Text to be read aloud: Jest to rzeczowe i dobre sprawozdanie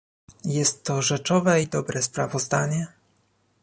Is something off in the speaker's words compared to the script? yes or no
no